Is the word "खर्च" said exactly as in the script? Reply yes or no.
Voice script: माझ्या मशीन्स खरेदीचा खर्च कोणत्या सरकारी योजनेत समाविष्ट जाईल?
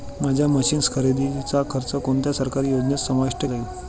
yes